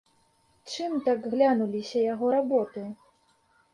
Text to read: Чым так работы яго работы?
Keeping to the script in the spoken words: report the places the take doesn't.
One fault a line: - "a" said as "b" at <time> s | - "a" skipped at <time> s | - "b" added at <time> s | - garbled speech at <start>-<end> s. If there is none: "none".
- "работы" said as "глянуліся" at 1.3 s